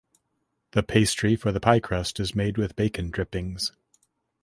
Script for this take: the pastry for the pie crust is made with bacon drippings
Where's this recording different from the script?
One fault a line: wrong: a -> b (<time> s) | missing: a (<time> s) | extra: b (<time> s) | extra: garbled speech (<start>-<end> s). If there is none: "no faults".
no faults